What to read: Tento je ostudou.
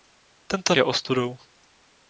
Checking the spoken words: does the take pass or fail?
pass